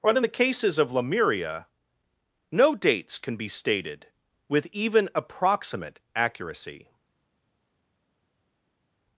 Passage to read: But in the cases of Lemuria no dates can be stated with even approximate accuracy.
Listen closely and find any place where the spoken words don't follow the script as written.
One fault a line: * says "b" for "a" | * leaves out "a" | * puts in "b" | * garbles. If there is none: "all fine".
all fine